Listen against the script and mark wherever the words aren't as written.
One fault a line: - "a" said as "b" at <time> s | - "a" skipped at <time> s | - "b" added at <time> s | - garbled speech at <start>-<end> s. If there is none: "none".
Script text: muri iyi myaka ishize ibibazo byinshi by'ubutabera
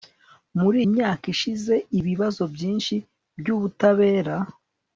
- "iyi" skipped at 0.8 s